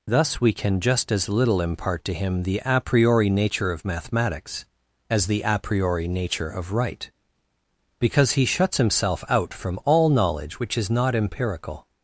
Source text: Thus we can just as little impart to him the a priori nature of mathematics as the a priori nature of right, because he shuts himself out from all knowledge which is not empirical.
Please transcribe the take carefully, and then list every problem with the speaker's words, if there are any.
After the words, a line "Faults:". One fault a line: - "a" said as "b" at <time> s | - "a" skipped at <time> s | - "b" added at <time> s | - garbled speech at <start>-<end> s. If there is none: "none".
Thus we can just as little impart to him the a priori nature of mathematics as the a priori nature of right, because he shuts himself out from all knowledge which is not empirical.
Faults:
none